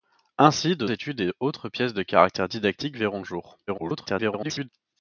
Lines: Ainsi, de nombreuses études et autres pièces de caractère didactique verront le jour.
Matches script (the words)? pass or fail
fail